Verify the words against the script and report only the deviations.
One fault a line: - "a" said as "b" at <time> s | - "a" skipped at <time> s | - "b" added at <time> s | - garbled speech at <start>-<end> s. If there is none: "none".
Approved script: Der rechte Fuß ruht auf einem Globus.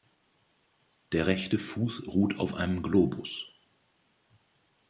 none